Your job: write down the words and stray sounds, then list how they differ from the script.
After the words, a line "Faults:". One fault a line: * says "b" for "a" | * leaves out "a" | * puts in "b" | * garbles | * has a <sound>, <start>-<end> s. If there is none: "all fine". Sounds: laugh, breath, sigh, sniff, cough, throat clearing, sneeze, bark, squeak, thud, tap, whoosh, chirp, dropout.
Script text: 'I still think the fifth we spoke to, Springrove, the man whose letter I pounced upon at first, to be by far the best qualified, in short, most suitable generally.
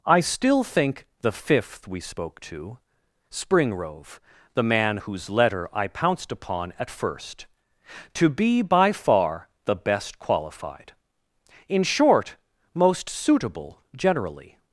'I still think the fifth we spoke to, Springrove, the man whose letter I pounced upon at first, to be by far the best qualified, in short, most suitable generally.
Faults:
all fine